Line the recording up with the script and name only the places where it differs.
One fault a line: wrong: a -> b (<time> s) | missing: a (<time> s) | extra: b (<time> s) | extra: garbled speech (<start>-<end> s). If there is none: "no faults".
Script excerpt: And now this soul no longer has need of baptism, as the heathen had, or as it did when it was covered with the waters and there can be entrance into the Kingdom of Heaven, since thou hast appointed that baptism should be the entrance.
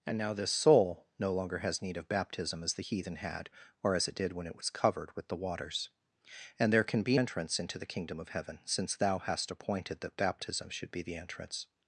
no faults